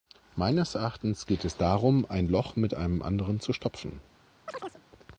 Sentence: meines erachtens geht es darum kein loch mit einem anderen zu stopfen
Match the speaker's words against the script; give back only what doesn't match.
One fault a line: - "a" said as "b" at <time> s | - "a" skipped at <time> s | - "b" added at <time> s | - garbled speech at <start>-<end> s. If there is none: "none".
- "kein" said as "ein" at 2.1 s